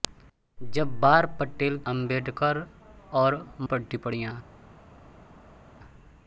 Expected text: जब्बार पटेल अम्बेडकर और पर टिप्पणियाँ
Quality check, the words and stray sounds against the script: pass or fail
pass